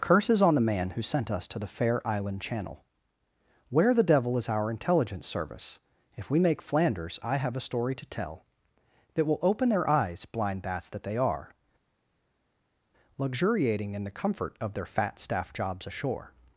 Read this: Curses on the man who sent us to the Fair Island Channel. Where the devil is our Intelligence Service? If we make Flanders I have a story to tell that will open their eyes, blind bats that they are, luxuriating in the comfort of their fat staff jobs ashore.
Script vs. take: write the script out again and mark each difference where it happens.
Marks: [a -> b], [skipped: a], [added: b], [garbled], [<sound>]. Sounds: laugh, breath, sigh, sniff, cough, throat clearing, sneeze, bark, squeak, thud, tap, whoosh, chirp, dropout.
Curses on the man who sent us to the Fair Island Channel. Where the devil is our Intelligence Service? If we make Flanders I have a story to tell that will open their eyes, blind bats that they are, luxuriating in the comfort of their fat staff jobs ashore.